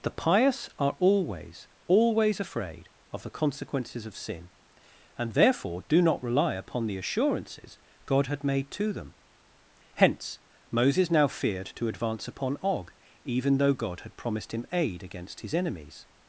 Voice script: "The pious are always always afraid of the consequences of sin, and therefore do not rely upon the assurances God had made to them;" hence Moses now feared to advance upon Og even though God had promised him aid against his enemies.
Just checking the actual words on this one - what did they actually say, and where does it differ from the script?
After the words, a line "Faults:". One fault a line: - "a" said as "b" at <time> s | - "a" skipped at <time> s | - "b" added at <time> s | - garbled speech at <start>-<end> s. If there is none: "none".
"The pious are always always afraid of the consequences of sin, and therefore do not rely upon the assurances God had made to them;" hence Moses now feared to advance upon Og even though God had promised him aid against his enemies.
Faults:
none